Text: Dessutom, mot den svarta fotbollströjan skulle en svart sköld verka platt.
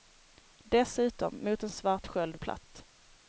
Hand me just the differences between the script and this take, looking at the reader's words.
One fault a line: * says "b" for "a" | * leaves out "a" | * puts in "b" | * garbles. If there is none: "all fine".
* leaves out "svarta fotbollströjan skulle"
* leaves out "verka"